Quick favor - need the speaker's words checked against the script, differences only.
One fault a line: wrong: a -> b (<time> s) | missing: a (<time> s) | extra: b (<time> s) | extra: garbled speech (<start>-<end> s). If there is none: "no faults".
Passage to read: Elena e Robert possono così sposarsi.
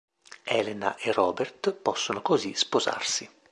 no faults